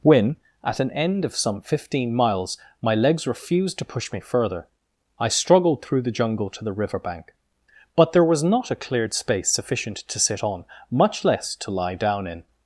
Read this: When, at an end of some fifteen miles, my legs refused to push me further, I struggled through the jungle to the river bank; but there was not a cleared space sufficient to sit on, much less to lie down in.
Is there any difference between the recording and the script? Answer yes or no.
no